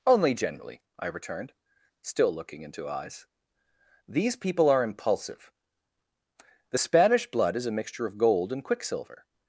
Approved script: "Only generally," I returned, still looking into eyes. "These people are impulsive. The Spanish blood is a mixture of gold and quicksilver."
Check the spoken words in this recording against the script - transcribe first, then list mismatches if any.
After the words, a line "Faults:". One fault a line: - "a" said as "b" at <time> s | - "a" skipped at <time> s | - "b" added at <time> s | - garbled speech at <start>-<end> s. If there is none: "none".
"Only generally," I returned, still looking into eyes. "These people are impulsive. The Spanish blood is a mixture of gold and quicksilver."
Faults:
none